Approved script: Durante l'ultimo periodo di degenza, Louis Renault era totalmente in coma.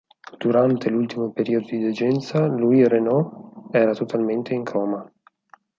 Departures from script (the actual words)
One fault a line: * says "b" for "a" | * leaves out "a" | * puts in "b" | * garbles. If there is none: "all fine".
all fine